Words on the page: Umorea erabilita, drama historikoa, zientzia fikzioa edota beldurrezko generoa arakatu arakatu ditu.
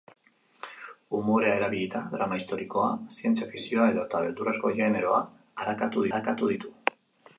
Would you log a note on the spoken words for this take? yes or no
no